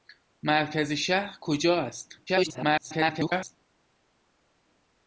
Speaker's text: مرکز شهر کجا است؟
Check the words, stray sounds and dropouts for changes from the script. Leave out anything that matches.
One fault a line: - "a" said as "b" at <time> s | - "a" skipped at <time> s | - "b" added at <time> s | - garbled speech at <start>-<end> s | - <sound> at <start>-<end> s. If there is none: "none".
- garbled speech at 2.3-3.6 s